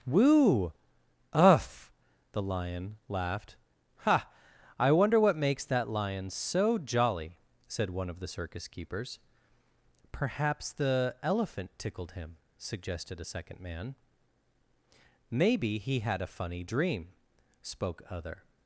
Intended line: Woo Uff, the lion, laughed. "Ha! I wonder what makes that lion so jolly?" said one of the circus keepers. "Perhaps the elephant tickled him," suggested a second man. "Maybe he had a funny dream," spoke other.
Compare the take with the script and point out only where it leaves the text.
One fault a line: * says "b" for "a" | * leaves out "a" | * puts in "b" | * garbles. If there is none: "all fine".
all fine